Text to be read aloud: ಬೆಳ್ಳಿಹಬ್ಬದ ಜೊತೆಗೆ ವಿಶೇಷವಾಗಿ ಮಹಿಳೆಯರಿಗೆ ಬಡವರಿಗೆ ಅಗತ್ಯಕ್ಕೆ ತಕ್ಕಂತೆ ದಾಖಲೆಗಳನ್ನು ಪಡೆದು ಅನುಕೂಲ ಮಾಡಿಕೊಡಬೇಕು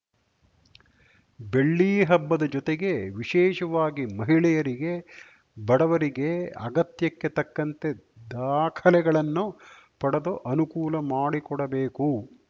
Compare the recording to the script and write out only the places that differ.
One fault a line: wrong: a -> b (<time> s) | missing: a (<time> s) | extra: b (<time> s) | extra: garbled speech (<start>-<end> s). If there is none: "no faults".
no faults